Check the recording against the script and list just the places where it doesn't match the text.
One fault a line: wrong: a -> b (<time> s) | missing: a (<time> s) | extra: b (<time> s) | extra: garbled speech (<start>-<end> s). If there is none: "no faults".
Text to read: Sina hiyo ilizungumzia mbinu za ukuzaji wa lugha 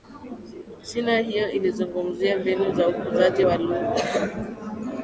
no faults